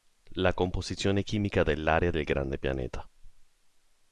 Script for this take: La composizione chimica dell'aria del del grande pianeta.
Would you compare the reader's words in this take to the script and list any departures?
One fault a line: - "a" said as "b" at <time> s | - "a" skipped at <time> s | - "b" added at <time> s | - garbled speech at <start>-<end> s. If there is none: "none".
- "del" skipped at 2.2 s